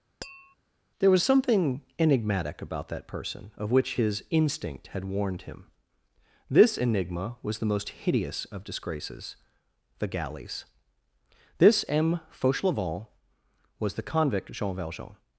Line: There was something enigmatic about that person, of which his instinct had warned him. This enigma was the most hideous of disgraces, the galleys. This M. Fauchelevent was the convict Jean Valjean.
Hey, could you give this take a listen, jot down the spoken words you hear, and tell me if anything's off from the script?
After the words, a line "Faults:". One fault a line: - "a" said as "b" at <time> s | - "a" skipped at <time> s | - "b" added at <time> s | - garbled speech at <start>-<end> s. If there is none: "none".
There was something enigmatic about that person, of which his instinct had warned him. This enigma was the most hideous of disgraces, the galleys. This M. Fauchelevent was the convict Jean Valjean.
Faults:
none